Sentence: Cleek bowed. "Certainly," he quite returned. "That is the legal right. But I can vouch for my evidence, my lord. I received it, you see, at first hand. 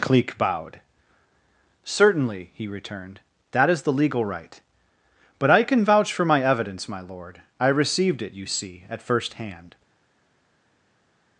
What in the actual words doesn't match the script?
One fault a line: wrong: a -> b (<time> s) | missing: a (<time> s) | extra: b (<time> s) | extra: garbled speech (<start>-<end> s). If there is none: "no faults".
missing: quite (2.7 s)